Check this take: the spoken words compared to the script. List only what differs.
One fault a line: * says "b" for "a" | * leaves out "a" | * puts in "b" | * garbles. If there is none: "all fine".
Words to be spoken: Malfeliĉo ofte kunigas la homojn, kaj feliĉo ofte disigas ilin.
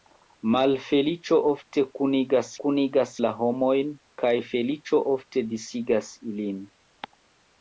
* puts in "kunigas"